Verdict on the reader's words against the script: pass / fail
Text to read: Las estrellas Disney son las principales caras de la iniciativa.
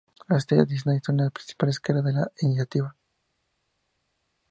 pass